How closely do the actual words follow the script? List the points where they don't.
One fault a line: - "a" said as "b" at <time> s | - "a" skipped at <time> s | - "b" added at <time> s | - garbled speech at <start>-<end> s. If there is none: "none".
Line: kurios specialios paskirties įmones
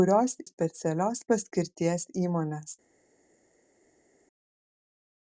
none